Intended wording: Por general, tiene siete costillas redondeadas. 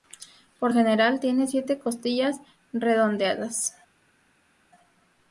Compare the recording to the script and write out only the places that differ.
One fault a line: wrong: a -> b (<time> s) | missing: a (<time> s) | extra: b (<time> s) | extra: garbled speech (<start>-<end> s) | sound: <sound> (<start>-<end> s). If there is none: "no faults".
no faults